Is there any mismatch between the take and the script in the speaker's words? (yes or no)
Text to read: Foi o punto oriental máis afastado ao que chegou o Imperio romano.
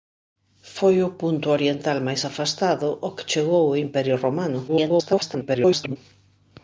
yes